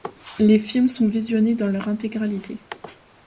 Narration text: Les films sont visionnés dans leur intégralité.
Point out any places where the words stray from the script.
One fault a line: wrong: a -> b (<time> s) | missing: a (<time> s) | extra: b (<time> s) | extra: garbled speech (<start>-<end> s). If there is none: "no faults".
no faults